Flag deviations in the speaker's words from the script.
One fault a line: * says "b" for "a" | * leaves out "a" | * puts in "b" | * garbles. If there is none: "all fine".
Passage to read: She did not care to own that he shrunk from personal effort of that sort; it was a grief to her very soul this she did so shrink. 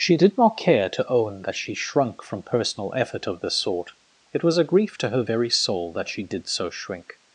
* says "she" for "he"
* says "this" for "that"
* says "that" for "this"